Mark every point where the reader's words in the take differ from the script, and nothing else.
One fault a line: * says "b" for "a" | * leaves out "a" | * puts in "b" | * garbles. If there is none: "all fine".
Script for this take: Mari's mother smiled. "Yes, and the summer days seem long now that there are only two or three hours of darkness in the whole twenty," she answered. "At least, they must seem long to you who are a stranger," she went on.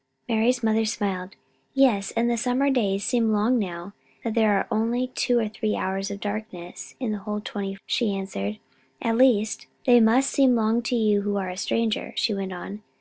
all fine